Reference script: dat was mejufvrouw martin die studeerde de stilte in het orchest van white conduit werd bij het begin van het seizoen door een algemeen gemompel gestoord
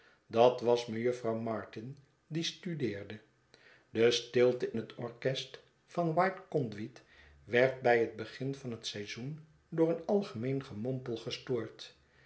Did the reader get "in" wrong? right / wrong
wrong